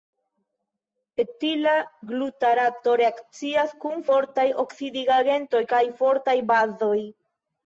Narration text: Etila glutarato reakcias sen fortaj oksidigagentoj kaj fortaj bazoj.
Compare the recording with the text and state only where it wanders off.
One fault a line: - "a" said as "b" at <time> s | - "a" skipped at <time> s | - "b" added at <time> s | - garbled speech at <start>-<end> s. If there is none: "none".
- "sen" said as "kun" at 3.9 s